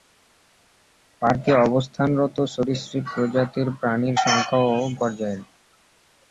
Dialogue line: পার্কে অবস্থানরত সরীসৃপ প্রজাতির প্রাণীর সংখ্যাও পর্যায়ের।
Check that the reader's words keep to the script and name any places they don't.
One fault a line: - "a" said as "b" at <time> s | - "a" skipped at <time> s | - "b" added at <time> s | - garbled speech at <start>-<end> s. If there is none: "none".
none